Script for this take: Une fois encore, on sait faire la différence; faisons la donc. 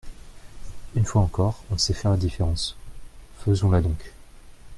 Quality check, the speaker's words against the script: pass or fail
pass